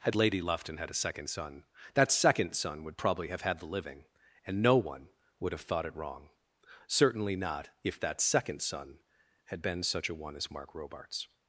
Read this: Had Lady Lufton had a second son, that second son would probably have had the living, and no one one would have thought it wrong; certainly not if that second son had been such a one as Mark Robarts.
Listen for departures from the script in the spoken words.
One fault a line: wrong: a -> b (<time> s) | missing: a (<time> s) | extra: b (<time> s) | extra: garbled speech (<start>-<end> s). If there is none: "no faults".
missing: one (5.1 s)